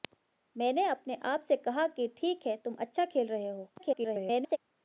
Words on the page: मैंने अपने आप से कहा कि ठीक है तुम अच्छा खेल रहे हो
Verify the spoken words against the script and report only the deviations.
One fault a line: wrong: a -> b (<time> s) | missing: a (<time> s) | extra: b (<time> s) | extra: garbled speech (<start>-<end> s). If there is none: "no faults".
extra: garbled speech (3.8-4.6 s)